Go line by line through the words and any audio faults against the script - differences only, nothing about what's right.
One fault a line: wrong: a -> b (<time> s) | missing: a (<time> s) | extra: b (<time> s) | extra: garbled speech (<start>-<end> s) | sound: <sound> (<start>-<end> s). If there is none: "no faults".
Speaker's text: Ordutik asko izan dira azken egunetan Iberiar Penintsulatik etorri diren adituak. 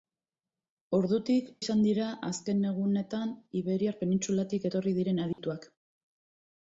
missing: asko (1.5 s)
sound: dropout (5.3-5.4 s)